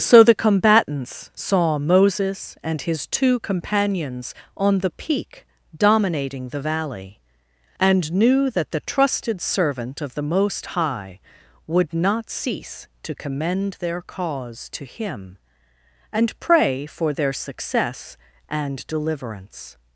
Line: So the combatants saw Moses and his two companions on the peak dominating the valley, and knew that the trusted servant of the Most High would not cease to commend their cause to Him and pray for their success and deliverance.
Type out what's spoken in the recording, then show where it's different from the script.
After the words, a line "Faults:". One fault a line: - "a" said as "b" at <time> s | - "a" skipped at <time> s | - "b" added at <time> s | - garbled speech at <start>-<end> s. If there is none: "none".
So the combatants saw Moses and his two companions on the peak dominating the valley, and knew that the trusted servant of the Most High would not cease to commend their cause to Him and pray for their success and deliverance.
Faults:
none